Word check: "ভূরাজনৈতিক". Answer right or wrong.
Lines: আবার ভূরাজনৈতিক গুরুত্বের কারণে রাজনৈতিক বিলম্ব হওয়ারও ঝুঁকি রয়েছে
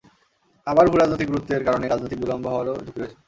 right